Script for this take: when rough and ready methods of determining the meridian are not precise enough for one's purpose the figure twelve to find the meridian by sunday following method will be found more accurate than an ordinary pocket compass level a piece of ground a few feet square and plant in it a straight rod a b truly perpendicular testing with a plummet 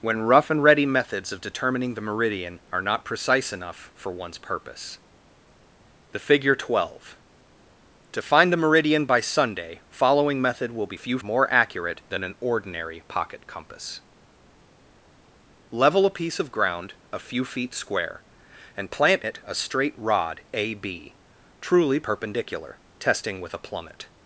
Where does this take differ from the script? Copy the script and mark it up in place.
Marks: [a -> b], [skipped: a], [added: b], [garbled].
when rough and ready methods of determining the meridian are not precise enough for one's purpose the figure twelve to find the meridian by sunday following method will be [found -> few] more accurate than an ordinary pocket compass level a piece of ground a few feet square and plant [skipped: in] it a straight rod a b truly perpendicular testing with a plummet